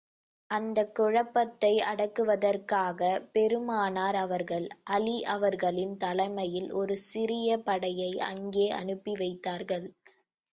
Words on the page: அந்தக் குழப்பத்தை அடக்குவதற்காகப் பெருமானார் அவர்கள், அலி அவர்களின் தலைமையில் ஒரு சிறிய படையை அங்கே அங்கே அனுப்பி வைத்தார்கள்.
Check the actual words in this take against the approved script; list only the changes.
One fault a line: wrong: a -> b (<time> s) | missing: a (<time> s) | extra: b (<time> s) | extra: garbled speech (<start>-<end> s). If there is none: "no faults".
missing: அங்கே (8.7 s)